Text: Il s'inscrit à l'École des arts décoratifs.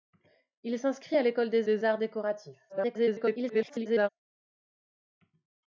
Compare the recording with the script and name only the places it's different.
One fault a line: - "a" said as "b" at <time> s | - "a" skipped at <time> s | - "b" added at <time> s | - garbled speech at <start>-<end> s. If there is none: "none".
- "des" added at 1.6 s
- garbled speech at 2.7-4.1 s